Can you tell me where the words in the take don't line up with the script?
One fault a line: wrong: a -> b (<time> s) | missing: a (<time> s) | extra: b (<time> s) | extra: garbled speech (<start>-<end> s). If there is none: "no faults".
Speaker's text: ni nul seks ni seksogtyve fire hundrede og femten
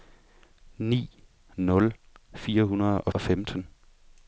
missing: seks ni seksogtyve (1.9 s)
extra: og (3.1 s)